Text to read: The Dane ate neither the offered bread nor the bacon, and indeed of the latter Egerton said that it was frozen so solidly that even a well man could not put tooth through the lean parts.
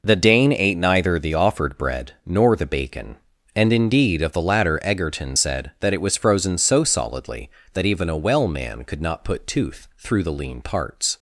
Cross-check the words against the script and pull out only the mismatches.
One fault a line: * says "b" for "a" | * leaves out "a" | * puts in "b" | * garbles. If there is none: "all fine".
all fine